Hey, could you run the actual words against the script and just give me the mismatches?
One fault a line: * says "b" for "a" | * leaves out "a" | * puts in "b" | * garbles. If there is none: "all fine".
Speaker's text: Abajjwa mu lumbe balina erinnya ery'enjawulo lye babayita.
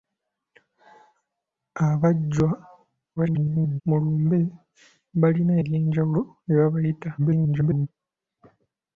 * garbles
* leaves out "erinnya"
* garbles